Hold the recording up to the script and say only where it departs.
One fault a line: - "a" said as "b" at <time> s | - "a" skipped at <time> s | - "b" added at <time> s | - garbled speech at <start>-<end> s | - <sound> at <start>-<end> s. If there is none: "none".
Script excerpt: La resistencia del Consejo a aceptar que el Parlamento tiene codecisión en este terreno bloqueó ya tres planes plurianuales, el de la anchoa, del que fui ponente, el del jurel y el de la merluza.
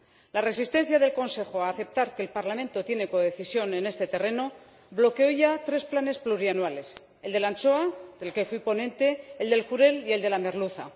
none